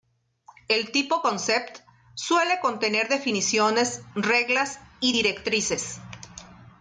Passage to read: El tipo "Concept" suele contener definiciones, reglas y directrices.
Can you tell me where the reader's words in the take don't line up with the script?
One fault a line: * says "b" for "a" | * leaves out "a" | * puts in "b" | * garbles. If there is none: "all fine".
all fine